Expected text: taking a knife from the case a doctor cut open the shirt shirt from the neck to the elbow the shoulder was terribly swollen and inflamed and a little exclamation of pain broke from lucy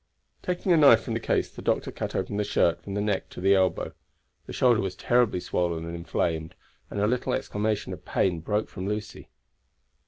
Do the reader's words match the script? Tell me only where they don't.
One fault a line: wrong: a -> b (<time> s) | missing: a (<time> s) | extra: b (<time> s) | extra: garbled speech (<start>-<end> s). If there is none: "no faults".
wrong: a -> the (1.5 s)
missing: shirt (2.8 s)